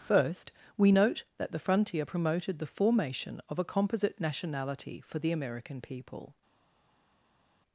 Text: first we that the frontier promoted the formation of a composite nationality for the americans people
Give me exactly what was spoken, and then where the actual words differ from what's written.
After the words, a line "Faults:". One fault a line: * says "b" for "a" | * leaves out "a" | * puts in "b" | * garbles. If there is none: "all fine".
first we note that the frontier promoted the formation of a composite nationality for the american people
Faults:
* puts in "note"
* says "american" for "americans"